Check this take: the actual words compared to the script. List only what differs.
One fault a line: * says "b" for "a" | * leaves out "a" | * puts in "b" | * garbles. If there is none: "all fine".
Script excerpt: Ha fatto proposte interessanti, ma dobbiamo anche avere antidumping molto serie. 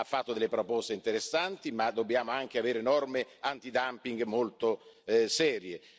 * puts in "delle"
* puts in "norme"